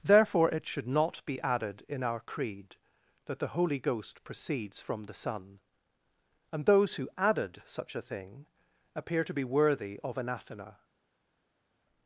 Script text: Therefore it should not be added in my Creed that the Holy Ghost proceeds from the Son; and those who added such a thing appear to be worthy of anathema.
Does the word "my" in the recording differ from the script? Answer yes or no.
yes